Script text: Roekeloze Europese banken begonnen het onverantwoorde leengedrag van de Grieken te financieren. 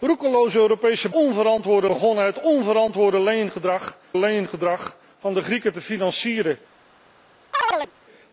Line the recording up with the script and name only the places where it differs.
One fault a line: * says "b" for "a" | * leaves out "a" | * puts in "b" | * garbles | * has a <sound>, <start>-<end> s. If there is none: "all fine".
* says "onverantwoorde" for "banken"
* puts in "leengedrag"
* has a chirp, 7.5-7.9 s